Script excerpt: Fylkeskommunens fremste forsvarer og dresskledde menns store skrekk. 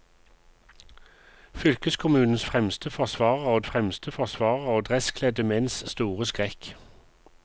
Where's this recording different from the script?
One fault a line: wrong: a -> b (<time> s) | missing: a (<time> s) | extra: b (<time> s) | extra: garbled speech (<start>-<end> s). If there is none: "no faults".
extra: fremste forsvarer og (3.7 s)